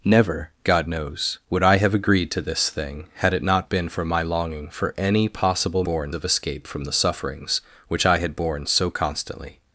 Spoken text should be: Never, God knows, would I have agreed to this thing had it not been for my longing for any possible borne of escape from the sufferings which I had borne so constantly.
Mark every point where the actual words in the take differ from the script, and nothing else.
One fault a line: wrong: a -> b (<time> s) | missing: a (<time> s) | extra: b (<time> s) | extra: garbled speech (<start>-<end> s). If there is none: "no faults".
no faults